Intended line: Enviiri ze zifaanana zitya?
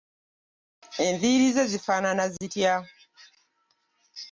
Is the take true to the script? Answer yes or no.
yes